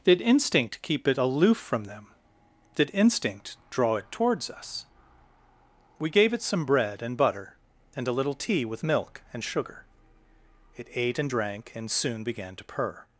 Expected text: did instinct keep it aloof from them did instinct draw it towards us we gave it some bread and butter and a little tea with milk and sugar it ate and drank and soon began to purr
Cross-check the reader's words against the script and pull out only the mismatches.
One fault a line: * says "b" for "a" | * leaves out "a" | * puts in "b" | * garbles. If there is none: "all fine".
all fine